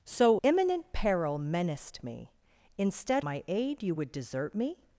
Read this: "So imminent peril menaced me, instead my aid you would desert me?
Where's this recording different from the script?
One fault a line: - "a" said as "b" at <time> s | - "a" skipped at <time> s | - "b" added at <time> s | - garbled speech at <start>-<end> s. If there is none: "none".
none